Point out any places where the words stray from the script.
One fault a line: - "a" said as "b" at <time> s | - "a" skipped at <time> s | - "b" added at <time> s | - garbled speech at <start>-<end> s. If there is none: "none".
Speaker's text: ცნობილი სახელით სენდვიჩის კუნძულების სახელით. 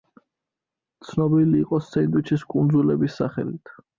- "სახელით" said as "იყო" at 1.6 s